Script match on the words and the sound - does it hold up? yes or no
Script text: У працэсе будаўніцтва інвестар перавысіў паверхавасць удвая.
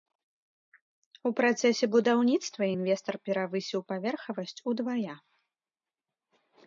yes